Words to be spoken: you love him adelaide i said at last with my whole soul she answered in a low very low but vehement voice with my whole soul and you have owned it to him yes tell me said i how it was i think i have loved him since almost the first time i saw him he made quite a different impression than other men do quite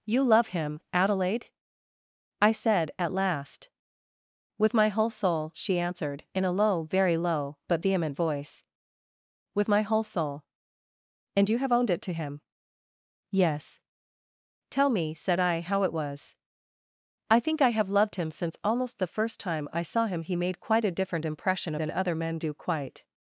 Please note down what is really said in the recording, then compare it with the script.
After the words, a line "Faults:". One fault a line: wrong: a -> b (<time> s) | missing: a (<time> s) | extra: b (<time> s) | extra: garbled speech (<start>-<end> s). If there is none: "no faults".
you love him adelaide i said at last with my whole soul she answered in a low very low but vehement voice with my whole soul and you have owned it to him yes tell me said i how it was i think i have loved him since almost the first time i saw him he made quite a different impression than other men do quite
Faults:
no faults